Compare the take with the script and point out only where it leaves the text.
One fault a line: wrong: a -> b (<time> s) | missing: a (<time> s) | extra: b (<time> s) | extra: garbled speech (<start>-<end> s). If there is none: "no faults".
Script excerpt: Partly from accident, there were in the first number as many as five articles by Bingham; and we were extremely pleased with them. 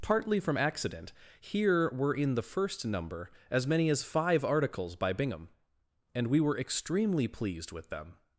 wrong: there -> here (1.4 s)